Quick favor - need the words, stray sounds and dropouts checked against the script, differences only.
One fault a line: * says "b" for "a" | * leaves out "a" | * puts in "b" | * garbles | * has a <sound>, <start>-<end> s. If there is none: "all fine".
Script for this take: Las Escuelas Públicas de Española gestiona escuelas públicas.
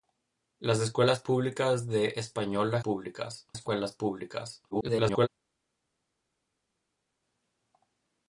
* says "públicas" for "gestiona"
* garbles